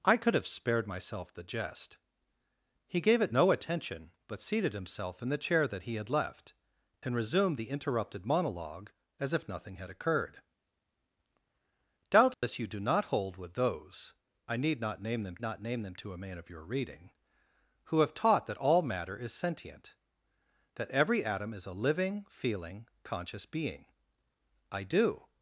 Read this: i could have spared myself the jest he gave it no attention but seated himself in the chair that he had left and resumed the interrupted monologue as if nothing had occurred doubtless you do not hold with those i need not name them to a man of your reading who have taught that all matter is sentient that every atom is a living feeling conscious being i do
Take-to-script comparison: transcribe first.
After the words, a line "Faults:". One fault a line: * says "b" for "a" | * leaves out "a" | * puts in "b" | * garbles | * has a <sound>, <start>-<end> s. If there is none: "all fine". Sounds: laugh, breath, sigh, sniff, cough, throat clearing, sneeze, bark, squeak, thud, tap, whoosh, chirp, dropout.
i could have spared myself the jest he gave it no attention but seated himself in the chair that he had left and resumed the interrupted monologue as if nothing had occurred doubtless you do not hold with those i need not name them not name them to a man of your reading who have taught that all matter is sentient that every atom is a living feeling conscious being i do
Faults:
* has a dropout, 12.3-12.4 s
* puts in "not name them"